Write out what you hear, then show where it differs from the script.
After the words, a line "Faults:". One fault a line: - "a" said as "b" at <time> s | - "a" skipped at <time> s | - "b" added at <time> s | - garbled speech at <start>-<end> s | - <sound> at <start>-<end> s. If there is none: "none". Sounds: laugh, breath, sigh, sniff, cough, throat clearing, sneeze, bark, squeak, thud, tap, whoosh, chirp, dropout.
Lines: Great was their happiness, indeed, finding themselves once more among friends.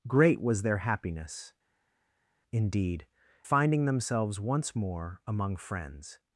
Great was their happiness, indeed, finding themselves once more among friends.
Faults:
none